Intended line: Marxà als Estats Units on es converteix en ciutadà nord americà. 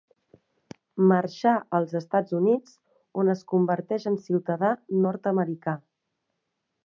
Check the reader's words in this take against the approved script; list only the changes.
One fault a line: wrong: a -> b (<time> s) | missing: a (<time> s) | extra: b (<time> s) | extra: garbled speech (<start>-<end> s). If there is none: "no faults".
no faults